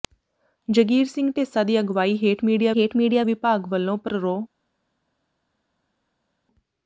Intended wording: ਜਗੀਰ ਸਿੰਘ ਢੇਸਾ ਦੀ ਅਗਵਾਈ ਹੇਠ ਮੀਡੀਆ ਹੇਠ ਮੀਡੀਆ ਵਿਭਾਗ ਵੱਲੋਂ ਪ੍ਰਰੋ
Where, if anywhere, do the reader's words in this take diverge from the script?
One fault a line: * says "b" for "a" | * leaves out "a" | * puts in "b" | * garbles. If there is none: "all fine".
all fine